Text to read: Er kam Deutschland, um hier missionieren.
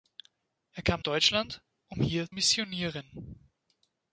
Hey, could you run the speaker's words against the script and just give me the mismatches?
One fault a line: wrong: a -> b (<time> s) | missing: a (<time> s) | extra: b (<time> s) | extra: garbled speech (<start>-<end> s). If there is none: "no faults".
no faults